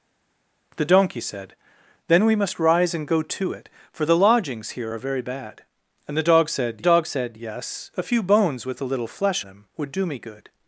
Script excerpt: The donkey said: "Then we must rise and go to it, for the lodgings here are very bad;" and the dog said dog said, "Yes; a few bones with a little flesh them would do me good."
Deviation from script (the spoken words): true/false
false